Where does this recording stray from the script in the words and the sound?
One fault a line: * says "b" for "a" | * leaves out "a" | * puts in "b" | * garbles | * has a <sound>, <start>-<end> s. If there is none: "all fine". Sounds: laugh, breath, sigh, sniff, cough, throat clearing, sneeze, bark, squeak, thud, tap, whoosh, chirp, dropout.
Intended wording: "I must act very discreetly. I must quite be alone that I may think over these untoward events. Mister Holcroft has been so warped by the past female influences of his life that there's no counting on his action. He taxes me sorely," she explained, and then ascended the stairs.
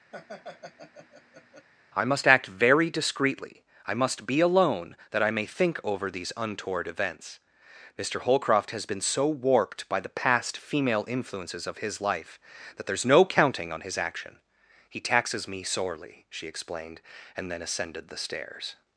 * has a laugh, 0.1-1.7 s
* leaves out "quite"